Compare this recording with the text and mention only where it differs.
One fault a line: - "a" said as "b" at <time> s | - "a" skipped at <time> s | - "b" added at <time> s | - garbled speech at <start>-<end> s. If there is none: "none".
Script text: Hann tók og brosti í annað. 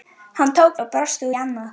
none